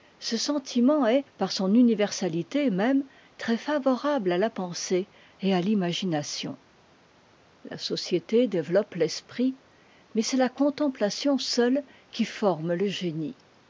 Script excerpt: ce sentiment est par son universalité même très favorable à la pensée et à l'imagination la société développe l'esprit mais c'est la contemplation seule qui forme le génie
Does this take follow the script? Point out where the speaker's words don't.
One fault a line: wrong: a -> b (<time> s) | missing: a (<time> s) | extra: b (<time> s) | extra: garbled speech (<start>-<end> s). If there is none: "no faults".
no faults